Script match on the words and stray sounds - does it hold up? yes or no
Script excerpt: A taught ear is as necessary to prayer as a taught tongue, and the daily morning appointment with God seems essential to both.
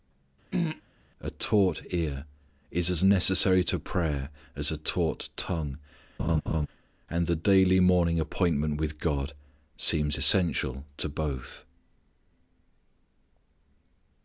no